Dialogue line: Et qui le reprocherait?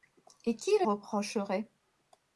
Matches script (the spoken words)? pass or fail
pass